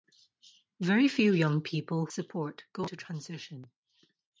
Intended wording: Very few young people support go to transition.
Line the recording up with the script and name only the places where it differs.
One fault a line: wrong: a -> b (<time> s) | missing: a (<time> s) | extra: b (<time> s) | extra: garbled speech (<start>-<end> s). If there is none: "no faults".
no faults